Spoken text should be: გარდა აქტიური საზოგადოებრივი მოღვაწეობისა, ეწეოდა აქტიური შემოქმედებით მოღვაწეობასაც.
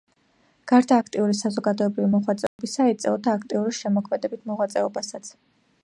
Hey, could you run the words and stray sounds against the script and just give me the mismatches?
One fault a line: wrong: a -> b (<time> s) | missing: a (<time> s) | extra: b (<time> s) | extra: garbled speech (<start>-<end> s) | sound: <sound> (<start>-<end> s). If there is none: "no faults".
sound: dropout (2.5-2.6 s)